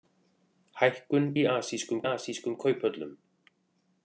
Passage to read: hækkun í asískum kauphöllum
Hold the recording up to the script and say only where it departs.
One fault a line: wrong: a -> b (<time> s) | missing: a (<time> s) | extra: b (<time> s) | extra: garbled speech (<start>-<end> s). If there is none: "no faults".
extra: asískum (2.1 s)